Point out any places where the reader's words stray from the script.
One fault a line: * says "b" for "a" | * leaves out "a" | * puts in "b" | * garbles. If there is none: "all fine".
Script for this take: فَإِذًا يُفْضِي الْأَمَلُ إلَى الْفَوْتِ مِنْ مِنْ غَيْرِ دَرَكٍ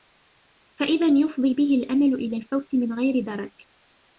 * puts in "بِهِ"
* leaves out "مِنْ"